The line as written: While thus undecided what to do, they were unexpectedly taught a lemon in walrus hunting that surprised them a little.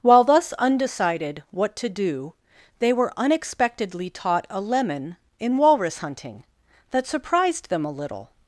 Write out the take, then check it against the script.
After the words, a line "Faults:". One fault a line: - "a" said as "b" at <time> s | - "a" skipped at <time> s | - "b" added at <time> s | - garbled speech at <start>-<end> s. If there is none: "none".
While thus undecided what to do, they were unexpectedly taught a lemon in walrus hunting that surprised them a little.
Faults:
none